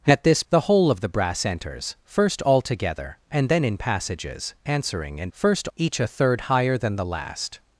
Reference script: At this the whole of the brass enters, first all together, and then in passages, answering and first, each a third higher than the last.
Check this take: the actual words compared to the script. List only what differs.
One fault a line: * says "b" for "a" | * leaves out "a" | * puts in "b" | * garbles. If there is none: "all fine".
all fine